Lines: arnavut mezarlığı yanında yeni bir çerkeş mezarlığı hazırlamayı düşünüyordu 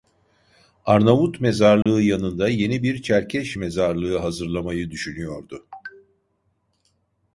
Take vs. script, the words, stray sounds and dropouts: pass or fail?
fail